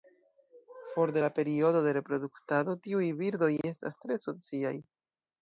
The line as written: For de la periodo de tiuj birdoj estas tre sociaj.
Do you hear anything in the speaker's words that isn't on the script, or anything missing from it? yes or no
yes